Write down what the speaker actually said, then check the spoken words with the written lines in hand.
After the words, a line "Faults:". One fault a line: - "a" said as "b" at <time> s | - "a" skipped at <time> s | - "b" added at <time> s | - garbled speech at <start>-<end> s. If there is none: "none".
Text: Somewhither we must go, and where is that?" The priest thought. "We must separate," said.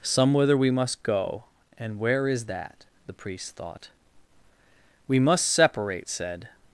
Somewhither we must go, and where is that?" The priest thought. "We must separate," said.
Faults:
none